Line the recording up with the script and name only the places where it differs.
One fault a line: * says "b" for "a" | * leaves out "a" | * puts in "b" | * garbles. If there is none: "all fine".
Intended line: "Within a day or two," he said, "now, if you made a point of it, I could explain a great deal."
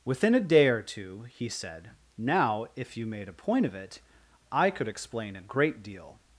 all fine